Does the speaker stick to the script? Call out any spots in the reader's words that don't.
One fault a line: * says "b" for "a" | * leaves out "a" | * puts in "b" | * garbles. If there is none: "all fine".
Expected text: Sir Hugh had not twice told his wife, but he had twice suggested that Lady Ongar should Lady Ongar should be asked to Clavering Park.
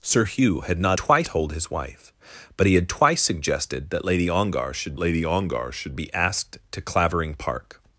all fine